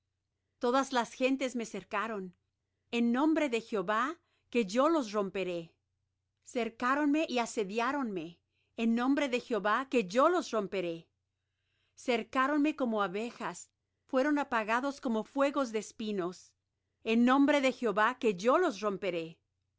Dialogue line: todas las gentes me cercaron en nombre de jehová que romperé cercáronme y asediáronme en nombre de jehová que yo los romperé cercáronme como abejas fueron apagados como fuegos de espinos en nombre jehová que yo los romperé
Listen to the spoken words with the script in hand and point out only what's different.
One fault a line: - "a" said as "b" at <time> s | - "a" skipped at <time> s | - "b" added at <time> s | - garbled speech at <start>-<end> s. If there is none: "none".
- "yo los" added at 4.7 s
- "de" added at 17.6 s